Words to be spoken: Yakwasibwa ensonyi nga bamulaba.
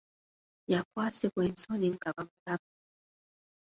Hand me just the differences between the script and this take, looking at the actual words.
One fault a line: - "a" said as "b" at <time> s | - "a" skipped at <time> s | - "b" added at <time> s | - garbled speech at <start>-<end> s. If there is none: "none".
none